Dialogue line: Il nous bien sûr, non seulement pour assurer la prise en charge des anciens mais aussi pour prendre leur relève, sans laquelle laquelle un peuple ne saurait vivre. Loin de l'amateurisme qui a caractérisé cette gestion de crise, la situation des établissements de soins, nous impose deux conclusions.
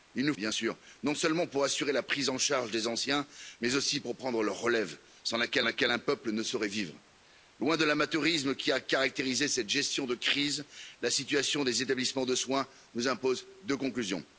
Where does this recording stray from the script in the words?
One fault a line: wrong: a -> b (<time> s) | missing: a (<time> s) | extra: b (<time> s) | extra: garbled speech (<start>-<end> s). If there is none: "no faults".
no faults